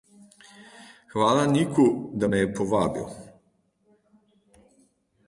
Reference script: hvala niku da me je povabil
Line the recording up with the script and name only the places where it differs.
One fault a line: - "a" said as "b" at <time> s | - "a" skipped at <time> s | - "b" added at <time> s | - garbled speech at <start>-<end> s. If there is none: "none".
none